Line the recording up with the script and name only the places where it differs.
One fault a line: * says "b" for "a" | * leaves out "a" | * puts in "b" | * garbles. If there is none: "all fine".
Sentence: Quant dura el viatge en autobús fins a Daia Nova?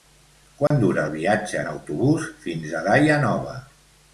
all fine